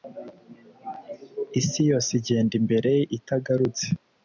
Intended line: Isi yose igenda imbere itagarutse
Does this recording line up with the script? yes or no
yes